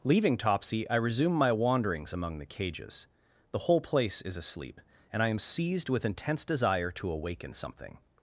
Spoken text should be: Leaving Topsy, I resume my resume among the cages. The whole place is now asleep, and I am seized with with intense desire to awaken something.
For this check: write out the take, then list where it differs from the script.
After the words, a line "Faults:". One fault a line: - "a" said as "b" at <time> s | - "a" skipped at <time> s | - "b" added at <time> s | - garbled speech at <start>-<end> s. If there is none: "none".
Leaving Topsy, I resume my wanderings among the cages. The whole place is asleep, and I am seized with intense desire to awaken something.
Faults:
- "resume" said as "wanderings" at 1.5 s
- "now" skipped at 4.3 s
- "with" skipped at 6.0 s